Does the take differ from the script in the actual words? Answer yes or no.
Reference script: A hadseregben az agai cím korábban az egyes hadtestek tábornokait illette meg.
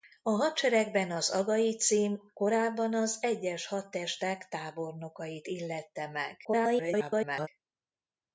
yes